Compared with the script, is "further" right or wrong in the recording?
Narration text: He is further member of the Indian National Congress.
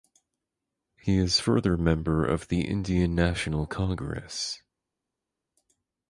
right